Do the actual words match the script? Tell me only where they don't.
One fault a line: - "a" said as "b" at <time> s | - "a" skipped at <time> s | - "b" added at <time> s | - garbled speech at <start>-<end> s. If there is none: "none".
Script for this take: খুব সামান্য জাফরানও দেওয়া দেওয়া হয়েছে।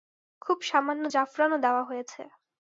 - "দেওয়া" skipped at 1.8 s